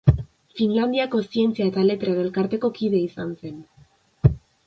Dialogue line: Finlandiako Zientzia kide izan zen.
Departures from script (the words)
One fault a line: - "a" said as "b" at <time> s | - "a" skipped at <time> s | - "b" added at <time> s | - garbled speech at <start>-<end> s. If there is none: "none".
- "eta Letren Elkarteko" added at 1.7 s